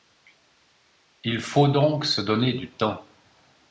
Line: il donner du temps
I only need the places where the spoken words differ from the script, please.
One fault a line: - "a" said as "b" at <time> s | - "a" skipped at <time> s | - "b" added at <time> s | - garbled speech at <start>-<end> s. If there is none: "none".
- "faut donc se" added at 1.4 s